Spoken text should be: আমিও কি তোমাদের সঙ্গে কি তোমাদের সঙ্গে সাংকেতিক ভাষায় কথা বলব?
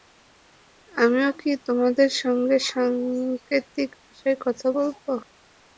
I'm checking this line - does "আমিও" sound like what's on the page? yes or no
yes